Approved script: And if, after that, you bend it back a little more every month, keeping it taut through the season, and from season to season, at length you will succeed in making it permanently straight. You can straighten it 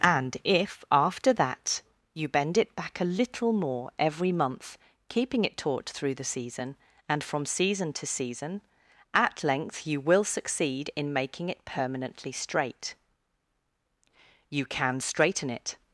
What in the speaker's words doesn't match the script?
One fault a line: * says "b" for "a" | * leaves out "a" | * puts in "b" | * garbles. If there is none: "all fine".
all fine